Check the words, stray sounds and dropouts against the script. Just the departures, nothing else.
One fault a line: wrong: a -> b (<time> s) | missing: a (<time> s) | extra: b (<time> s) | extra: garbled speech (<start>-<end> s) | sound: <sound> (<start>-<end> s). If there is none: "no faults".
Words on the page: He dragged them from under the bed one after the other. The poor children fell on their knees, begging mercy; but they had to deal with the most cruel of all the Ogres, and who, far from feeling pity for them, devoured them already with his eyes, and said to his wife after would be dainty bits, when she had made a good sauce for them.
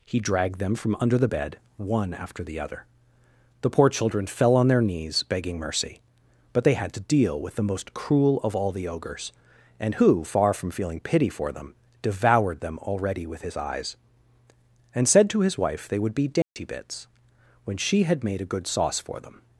wrong: after -> they (15.9 s)
sound: dropout (16.4-16.6 s)